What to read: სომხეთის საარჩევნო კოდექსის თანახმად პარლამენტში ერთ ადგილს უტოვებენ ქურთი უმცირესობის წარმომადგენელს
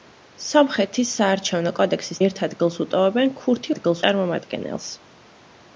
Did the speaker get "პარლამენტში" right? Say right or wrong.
wrong